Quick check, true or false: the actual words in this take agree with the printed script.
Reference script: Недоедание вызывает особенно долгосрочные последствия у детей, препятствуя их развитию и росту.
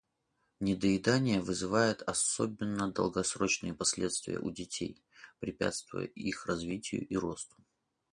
true